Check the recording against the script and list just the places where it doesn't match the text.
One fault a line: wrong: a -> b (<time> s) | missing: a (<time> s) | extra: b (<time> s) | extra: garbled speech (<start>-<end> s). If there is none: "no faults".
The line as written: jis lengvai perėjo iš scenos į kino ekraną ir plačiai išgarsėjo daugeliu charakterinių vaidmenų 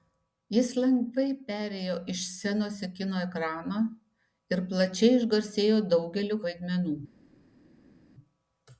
missing: charakterinių (6.4 s)